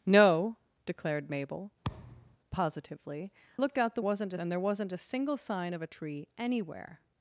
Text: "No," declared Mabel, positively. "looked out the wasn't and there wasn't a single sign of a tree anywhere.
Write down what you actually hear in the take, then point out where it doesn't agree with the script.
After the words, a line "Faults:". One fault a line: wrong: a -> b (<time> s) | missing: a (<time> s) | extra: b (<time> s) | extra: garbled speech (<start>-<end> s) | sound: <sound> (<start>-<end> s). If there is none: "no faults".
"No," declared Mabel, positively. "looked out the wasn't and there wasn't a single sign of a tree anywhere.
Faults:
sound: thud (1.8-2.4 s)